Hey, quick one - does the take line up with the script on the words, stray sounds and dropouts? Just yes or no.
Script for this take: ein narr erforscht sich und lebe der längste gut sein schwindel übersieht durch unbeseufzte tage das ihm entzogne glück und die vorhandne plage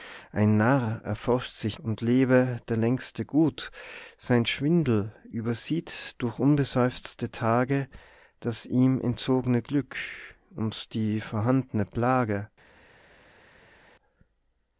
yes